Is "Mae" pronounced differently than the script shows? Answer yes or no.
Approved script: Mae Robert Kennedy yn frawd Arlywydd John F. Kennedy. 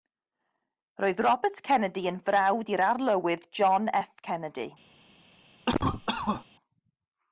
yes